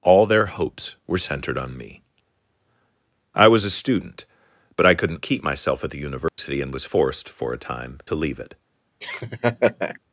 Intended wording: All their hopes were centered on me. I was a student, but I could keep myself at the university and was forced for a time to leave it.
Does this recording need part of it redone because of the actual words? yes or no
yes